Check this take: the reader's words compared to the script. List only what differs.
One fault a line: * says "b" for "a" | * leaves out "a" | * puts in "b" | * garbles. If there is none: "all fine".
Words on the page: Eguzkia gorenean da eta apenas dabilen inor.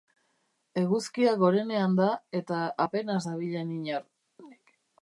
all fine